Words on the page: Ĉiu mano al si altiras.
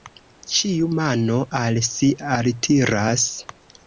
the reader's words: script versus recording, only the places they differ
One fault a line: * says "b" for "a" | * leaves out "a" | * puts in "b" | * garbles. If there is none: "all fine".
all fine